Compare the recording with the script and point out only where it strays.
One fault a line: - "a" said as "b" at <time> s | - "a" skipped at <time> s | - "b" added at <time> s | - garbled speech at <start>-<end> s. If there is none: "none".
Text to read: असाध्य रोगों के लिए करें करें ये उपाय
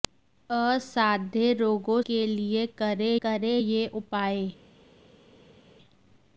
none